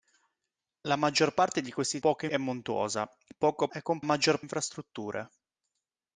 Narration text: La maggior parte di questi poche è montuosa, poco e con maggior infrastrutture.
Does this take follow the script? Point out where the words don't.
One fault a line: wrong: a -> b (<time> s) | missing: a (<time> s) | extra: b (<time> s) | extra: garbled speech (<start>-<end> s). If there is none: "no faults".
no faults